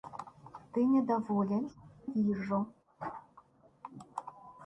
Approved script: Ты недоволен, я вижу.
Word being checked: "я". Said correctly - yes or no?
no